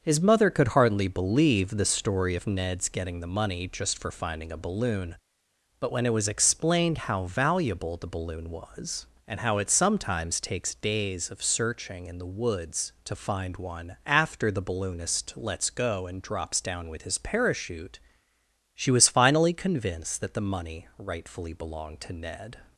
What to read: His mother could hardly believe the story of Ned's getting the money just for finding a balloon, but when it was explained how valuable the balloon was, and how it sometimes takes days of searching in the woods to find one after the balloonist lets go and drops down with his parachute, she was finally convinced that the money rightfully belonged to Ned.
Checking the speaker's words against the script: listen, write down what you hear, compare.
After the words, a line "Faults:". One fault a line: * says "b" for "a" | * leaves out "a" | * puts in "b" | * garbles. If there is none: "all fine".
His mother could hardly believe the story of Ned's getting the money just for finding a balloon, but when it was explained how valuable the balloon was, and how it sometimes takes days of searching in the woods to find one after the balloonist lets go and drops down with his parachute, she was finally convinced that the money rightfully belonged to Ned.
Faults:
all fine